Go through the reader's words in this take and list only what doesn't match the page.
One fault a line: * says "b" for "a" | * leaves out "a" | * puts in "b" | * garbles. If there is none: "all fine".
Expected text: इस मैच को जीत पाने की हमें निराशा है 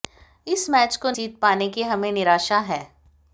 all fine